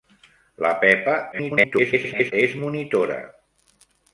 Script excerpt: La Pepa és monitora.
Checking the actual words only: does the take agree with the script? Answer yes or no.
no